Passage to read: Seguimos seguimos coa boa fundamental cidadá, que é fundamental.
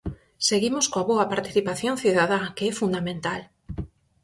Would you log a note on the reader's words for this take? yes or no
yes